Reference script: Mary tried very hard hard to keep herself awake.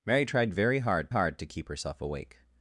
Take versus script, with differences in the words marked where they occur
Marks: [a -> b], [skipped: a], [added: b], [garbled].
Mary tried very hard hard to keep herself awake.